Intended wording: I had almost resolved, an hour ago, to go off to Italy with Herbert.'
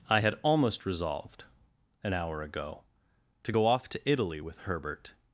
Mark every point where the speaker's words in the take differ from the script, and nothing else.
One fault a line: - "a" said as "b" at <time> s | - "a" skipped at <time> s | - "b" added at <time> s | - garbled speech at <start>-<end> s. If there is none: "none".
none